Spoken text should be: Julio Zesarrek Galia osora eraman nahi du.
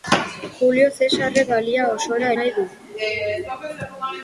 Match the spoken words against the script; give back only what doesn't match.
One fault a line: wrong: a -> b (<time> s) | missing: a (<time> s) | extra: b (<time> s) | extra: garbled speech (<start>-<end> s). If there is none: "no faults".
missing: eraman (2.3 s)